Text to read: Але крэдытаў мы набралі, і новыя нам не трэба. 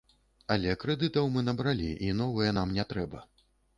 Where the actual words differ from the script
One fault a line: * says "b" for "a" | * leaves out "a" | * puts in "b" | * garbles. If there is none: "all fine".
all fine